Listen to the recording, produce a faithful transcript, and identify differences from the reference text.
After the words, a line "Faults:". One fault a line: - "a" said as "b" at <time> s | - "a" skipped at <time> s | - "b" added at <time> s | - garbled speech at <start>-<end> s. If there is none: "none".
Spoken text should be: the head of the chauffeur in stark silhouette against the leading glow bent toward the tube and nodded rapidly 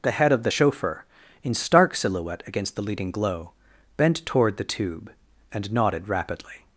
the head of the chauffeur in stark silhouette against the leading glow bent toward the tube and nodded rapidly
Faults:
none